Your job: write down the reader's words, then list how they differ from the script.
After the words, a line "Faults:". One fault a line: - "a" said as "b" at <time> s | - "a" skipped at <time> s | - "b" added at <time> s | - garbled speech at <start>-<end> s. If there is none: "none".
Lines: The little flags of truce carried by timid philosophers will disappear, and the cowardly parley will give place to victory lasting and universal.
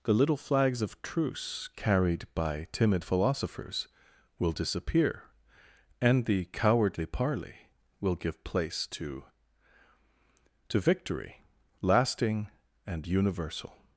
The little flags of truce carried by timid philosophers will disappear, and the cowardly parley will give place to to victory lasting and universal.
Faults:
- "to" added at 10.7 s